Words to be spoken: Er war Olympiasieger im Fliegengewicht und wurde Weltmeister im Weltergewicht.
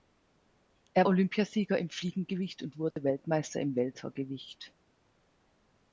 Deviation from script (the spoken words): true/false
true